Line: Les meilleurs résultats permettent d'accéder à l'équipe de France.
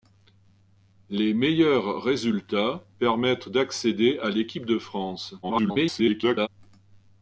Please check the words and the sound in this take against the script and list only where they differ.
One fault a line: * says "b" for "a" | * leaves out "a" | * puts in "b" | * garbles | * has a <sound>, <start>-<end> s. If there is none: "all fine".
* garbles